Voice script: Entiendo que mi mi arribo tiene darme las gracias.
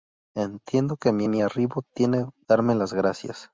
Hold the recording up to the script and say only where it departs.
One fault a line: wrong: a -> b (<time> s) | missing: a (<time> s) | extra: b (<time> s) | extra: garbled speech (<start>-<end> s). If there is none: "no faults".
no faults